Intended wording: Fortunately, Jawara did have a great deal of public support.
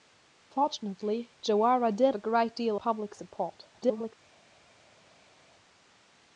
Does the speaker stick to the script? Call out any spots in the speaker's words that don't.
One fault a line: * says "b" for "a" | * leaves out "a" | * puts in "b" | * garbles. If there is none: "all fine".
* leaves out "have"
* leaves out "of"
* garbles